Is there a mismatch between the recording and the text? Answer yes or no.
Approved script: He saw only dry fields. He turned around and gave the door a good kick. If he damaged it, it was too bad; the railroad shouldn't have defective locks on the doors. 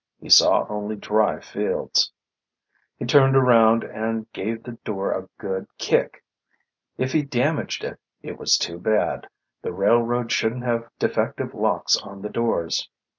no